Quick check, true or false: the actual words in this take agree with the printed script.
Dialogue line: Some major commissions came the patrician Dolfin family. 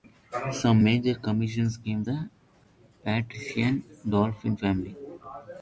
true